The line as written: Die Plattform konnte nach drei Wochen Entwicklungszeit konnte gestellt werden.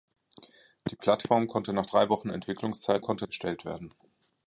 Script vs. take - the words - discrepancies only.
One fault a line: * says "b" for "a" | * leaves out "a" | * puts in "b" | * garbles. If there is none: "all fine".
all fine